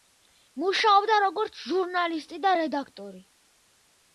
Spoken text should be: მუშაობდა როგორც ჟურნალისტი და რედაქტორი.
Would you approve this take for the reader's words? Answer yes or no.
yes